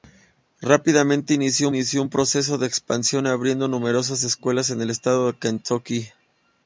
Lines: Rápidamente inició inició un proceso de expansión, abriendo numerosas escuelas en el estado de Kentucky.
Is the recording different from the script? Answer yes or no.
no